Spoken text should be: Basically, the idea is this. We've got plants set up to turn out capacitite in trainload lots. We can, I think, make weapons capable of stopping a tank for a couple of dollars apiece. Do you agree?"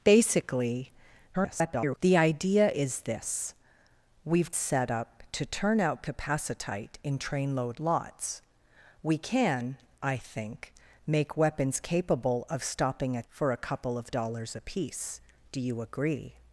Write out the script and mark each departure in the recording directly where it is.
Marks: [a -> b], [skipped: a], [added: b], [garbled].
Basically, [garbled] the idea is this. We've [skipped: got plants] set up to turn out capacitite in trainload lots. We can, I think, make weapons capable of stopping a [skipped: tank] for a couple of dollars apiece. Do you agree?"